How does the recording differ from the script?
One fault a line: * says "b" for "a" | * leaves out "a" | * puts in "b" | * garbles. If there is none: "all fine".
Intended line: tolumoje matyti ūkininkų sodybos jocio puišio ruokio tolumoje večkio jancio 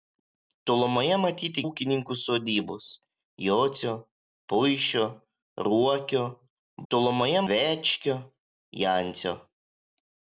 all fine